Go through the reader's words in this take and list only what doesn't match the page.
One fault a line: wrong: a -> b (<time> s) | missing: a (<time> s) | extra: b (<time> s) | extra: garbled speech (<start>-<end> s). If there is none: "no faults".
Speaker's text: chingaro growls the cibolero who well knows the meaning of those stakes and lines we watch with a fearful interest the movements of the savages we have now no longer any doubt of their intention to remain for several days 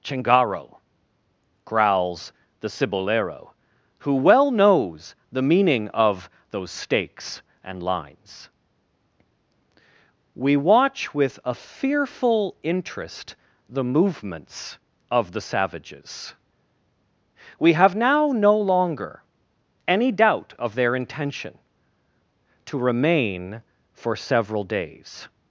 no faults